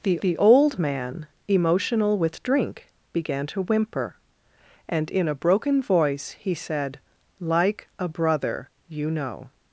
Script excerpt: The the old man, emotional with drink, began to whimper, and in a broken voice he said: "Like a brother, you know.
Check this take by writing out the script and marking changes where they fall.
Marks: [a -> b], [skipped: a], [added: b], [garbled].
The the old man, emotional with drink, began to whimper, and in a broken voice he said: "Like a brother, you know.